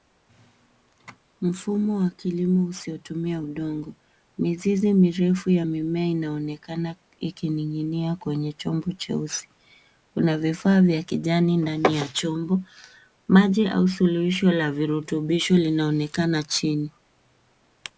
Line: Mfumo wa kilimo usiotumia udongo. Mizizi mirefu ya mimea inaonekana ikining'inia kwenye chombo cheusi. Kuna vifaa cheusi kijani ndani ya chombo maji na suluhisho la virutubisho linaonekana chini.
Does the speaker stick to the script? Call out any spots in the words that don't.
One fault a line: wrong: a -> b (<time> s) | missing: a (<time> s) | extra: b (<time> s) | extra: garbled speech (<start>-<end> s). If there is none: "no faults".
wrong: cheusi -> vya (10.8 s)
wrong: na -> au (13.7 s)